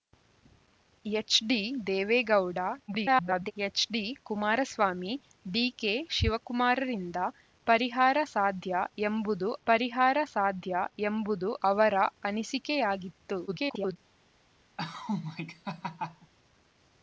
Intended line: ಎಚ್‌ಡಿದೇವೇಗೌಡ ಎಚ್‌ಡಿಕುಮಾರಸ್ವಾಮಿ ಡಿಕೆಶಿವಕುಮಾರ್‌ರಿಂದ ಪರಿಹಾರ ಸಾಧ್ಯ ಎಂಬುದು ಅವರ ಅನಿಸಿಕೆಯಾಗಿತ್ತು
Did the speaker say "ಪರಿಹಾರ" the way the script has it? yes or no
yes